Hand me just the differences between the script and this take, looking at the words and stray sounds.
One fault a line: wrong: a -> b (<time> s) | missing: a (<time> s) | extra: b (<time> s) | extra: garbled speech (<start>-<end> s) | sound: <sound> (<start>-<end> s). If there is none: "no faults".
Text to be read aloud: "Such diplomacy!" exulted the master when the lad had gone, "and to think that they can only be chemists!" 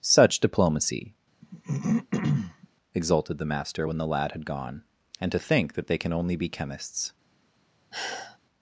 sound: throat clearing (1.4-2.7 s)
sound: sigh (7.9-8.4 s)